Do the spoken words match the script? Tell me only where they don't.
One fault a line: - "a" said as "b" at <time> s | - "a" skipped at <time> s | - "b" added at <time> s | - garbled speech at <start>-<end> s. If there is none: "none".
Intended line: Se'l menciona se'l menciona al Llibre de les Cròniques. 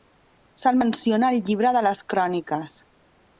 - "se'l menciona" skipped at 1.3 s